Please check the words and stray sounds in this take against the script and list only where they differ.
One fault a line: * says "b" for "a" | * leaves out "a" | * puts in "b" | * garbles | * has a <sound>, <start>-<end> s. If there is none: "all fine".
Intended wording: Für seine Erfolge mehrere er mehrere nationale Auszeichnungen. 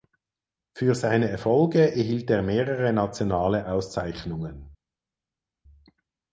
* says "erhielt" for "mehrere"